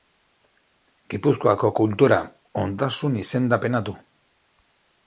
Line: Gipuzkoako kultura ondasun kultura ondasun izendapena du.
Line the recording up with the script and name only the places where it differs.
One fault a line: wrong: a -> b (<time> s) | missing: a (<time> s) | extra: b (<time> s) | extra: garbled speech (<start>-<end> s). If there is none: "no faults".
missing: kultura ondasun (3.2 s)